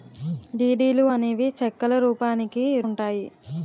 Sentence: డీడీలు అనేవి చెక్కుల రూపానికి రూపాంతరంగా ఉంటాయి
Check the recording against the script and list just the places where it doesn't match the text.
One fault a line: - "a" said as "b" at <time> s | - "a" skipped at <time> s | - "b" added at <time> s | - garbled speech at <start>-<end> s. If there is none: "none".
- "రూపాంతరంగా" skipped at 2.6 s